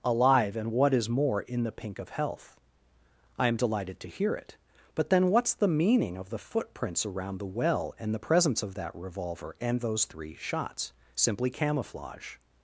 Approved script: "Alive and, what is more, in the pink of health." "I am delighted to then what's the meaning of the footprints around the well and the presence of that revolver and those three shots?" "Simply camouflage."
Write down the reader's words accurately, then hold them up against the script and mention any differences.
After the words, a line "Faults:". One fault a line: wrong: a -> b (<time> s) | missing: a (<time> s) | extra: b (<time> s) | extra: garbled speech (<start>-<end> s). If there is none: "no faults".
"Alive and, what is more, in the pink of health." "I am delighted to hear it. But then what's the meaning of the footprints around the well and the presence of that revolver and those three shots?" "Simply camouflage."
Faults:
extra: hear it But (4.1 s)